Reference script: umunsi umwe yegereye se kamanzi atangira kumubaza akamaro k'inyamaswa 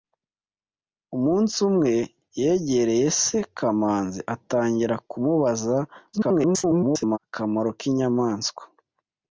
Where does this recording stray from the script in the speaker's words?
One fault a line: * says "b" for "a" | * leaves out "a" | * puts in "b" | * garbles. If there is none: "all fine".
* garbles